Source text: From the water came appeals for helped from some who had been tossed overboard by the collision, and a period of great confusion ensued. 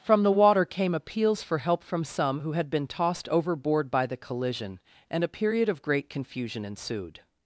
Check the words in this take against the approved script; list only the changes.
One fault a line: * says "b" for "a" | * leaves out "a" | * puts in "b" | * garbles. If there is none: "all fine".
* says "help" for "helped"